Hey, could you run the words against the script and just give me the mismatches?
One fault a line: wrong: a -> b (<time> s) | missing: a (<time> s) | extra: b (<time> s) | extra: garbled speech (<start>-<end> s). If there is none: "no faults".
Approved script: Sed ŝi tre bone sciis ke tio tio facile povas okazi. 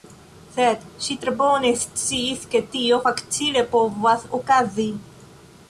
missing: tio (3.0 s)